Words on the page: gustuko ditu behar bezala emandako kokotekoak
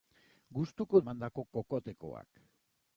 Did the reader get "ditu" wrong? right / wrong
wrong